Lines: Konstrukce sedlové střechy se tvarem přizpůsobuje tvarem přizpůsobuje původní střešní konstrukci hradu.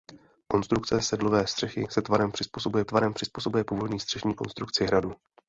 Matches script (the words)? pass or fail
pass